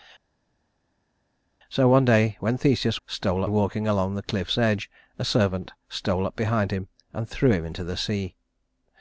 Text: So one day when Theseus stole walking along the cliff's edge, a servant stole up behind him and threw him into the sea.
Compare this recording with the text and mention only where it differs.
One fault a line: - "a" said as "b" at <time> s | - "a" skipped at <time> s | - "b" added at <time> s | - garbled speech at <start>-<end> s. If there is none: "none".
none